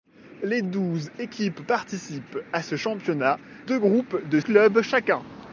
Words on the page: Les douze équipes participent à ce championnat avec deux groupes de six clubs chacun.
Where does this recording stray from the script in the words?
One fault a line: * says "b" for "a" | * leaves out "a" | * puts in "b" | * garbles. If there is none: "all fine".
* leaves out "avec"
* leaves out "six"